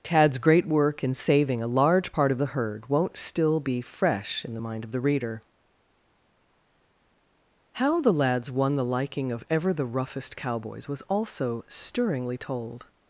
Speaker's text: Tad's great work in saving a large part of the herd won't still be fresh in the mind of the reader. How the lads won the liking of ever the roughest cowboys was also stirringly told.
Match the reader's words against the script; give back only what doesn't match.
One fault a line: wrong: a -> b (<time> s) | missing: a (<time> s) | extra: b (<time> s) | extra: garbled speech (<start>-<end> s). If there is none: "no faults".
no faults